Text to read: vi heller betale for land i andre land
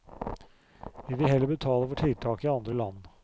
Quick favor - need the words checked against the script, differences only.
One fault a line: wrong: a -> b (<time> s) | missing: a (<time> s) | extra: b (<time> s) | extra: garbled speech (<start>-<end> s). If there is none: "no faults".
extra: vil (1.1 s)
wrong: land -> tiltak (1.9 s)